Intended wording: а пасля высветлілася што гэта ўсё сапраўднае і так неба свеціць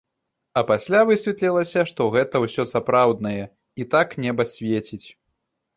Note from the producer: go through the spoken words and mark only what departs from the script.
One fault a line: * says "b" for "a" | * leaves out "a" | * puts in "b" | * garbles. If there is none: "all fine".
all fine